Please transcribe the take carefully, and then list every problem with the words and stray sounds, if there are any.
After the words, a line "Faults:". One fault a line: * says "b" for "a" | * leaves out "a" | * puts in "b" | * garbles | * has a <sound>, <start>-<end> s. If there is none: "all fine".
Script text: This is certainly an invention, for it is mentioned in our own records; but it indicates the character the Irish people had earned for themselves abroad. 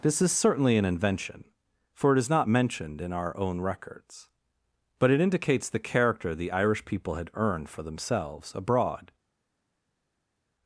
This is certainly an invention, for it is not mentioned in our own records; but it indicates the character the Irish people had earned for themselves abroad.
Faults:
* puts in "not"